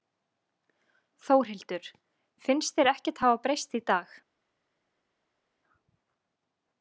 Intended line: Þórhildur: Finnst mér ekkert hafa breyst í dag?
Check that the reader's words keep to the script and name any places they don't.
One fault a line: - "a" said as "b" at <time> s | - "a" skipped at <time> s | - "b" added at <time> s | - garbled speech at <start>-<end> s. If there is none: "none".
- "mér" said as "þér" at 2.8 s